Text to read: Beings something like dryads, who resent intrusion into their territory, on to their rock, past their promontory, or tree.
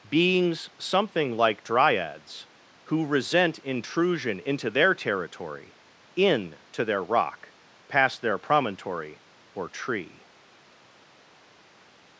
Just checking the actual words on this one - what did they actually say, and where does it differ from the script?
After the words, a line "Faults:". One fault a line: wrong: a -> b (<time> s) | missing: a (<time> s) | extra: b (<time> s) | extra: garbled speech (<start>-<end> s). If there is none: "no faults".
Beings something like dryads, who resent intrusion into their territory, in to their rock, past their promontory, or tree.
Faults:
wrong: on -> in (6.2 s)